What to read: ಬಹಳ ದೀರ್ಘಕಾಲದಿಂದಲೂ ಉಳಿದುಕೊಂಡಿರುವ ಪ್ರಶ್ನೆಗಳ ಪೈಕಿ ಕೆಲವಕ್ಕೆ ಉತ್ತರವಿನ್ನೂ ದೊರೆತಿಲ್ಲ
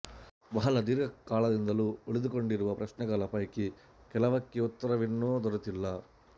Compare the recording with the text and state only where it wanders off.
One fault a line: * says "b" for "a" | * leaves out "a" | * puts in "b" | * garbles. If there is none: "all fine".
all fine